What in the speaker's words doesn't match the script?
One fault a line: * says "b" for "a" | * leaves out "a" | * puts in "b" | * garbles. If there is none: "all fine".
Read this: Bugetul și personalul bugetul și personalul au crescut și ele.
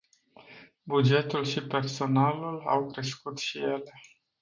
* leaves out "bugetul și personalul"